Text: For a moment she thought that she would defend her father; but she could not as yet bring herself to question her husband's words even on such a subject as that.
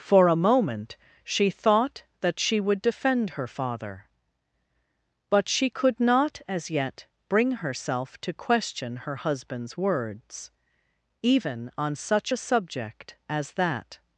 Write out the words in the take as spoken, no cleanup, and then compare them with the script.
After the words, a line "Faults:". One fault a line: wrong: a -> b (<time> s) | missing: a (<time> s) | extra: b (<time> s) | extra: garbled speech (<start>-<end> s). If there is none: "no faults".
For a moment she thought that she would defend her father; but she could not as yet bring herself to question her husband's words even on such a subject as that.
Faults:
no faults